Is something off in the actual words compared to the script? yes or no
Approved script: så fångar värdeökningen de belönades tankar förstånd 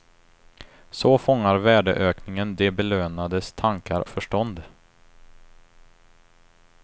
no